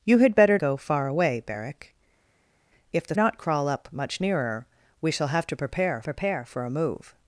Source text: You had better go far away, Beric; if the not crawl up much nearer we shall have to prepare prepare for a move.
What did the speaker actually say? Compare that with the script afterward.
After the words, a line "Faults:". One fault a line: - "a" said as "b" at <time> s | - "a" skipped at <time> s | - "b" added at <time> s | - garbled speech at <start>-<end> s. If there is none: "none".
You had better go far away, Beric; if the not crawl up much nearer we shall have to prepare prepare for a move.
Faults:
none